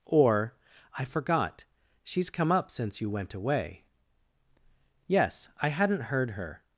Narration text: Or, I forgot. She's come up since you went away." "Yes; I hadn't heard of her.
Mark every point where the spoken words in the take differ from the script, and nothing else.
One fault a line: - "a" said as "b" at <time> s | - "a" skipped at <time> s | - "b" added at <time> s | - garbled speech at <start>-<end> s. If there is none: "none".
- "of" skipped at 6.3 s